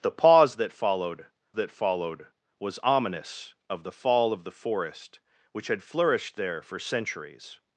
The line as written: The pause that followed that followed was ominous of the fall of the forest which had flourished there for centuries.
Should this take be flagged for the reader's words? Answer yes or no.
no